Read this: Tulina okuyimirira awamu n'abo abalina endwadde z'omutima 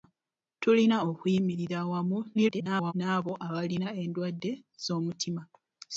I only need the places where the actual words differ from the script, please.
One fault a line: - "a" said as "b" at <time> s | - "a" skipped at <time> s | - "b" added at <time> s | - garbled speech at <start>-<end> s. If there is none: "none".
- garbled speech at 2.3-2.9 s